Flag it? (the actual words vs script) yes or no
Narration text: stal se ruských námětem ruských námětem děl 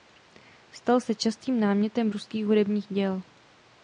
yes